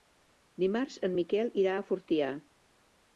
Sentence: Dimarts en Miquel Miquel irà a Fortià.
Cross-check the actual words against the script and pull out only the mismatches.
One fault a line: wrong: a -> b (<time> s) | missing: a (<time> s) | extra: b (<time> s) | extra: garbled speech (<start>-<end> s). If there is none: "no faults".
missing: Miquel (1.5 s)